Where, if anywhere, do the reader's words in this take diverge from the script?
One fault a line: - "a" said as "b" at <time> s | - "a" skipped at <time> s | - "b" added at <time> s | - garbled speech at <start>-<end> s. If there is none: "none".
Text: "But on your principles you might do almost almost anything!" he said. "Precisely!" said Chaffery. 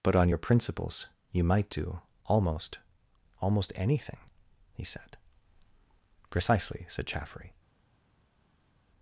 none